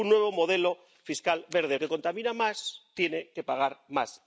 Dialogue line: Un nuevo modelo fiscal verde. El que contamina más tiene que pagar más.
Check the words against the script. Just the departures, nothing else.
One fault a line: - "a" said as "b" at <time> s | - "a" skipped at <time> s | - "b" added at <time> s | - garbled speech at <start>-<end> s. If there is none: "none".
none